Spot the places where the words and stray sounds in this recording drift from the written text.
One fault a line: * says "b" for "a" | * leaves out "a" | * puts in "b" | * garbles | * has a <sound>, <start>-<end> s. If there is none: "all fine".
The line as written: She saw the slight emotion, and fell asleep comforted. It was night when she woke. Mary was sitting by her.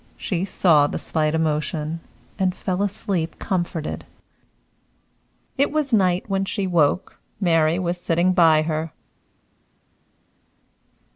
all fine